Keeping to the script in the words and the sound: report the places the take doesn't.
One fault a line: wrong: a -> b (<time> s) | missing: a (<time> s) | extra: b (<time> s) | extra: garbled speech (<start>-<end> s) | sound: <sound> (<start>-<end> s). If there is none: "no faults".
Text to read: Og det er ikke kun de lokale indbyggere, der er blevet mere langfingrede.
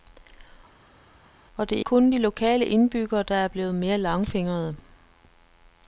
missing: ikke (1.8 s)